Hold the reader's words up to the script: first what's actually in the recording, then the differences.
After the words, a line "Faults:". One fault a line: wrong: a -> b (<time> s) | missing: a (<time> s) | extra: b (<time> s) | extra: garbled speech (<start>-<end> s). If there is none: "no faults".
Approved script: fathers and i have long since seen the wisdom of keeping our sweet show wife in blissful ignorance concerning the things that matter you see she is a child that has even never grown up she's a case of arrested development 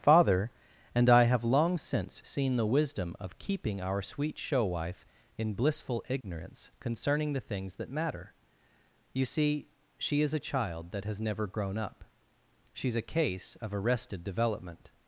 father and i have long since seen the wisdom of keeping our sweet show wife in blissful ignorance concerning the things that matter you see she is a child that has never grown up she's a case of arrested development
Faults:
wrong: fathers -> father (0.0 s)
missing: even (11.2 s)